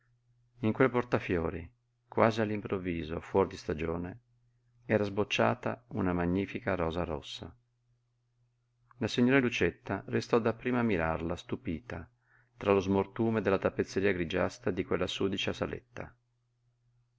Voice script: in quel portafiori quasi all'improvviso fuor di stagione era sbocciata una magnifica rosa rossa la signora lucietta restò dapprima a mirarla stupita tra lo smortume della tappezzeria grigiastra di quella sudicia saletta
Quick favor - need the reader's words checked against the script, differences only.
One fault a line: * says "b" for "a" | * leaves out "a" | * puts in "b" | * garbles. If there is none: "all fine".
all fine